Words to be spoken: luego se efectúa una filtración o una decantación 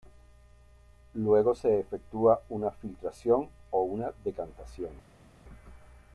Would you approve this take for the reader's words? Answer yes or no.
yes